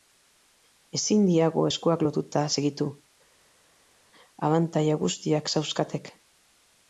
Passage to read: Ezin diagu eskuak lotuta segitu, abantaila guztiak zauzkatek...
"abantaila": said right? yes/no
yes